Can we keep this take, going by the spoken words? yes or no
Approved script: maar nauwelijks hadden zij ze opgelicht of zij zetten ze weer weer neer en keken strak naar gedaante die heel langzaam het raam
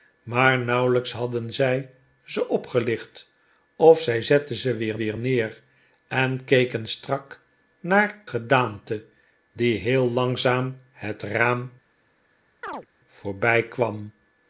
yes